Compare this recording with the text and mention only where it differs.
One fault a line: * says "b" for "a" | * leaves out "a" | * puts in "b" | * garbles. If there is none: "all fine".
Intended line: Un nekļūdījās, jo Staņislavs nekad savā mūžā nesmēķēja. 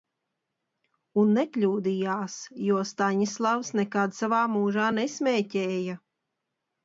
all fine